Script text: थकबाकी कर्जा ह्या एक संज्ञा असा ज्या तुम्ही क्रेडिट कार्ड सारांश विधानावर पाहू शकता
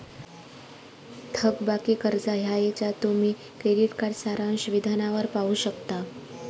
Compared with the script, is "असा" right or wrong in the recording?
wrong